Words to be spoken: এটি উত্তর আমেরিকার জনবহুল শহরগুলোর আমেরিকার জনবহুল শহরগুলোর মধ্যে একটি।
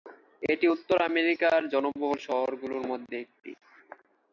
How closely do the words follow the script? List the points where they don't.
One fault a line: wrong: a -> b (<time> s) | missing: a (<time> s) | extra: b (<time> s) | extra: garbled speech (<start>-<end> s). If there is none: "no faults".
missing: আমেরিকার জনবহুল শহরগুলোর (2.8 s)